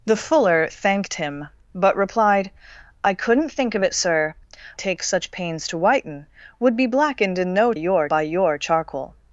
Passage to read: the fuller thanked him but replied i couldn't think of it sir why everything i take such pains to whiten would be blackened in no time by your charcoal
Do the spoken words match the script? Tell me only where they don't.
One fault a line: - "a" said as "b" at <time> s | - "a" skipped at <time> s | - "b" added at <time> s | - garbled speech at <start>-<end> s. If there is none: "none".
- "why everything i" skipped at 4.3 s
- "time" said as "your" at 7.7 s